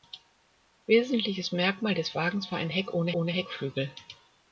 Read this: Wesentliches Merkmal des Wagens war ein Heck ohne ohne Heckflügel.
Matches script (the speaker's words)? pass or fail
pass